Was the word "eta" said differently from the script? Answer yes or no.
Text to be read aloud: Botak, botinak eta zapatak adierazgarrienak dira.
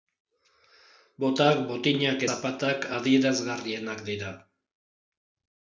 yes